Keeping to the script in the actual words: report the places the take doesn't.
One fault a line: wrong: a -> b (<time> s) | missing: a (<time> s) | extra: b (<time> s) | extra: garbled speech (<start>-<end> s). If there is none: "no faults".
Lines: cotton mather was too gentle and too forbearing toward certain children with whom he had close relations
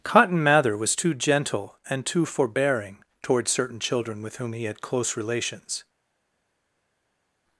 no faults